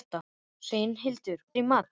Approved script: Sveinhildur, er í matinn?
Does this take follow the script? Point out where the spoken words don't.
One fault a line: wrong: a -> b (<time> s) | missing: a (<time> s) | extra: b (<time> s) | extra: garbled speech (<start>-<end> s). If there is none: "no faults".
no faults